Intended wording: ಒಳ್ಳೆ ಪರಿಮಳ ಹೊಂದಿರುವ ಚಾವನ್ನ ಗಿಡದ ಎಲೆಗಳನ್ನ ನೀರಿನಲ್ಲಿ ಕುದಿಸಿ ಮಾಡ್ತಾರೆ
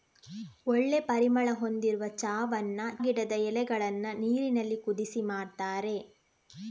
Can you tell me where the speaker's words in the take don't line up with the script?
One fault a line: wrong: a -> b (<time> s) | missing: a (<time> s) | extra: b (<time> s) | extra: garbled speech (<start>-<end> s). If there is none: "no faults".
no faults